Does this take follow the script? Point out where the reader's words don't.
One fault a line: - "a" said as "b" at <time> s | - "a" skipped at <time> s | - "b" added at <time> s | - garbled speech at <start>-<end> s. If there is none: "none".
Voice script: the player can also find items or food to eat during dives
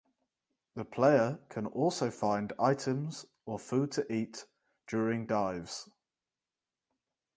none